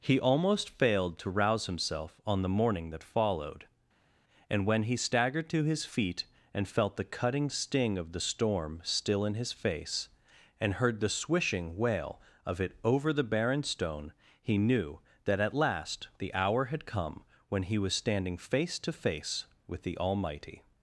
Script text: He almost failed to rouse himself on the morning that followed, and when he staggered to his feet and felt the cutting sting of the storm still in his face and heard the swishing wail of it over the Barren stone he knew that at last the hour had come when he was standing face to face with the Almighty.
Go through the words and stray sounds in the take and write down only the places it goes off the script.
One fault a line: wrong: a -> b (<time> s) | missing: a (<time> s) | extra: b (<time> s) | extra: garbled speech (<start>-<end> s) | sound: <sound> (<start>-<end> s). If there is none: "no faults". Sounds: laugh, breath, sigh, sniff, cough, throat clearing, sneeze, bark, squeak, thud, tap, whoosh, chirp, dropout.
no faults